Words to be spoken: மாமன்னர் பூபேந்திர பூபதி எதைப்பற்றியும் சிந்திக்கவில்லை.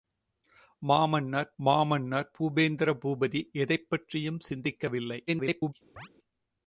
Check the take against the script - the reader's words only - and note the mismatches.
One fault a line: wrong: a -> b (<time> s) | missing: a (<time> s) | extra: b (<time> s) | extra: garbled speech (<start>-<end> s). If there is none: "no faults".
extra: மாமன்னர் (1.6 s)
extra: garbled speech (5.3-5.7 s)